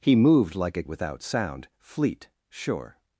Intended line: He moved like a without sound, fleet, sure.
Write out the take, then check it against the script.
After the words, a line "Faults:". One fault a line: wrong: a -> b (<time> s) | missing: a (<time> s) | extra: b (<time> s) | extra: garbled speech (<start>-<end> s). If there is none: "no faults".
He moved like a without sound, fleet, sure.
Faults:
no faults